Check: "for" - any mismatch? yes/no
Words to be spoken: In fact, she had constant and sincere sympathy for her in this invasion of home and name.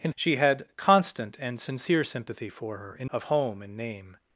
no